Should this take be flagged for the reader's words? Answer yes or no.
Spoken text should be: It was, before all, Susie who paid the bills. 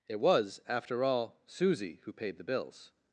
yes